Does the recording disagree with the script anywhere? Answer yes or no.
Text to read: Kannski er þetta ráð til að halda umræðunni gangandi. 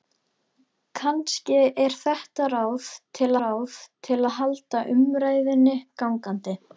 yes